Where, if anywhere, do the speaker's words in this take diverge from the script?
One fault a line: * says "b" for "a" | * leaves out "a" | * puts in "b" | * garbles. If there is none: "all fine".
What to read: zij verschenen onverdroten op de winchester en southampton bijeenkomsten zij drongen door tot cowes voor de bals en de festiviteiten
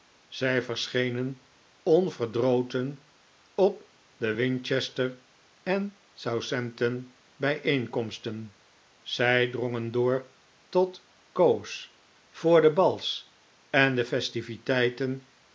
all fine